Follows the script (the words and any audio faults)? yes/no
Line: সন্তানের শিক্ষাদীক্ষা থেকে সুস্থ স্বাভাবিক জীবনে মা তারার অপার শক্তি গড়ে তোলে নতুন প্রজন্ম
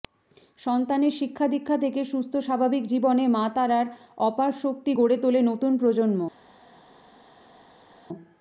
yes